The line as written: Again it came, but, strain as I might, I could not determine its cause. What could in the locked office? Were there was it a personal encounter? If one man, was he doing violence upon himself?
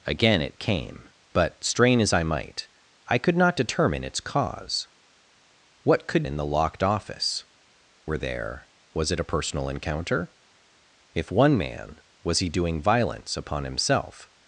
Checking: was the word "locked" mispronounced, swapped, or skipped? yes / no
no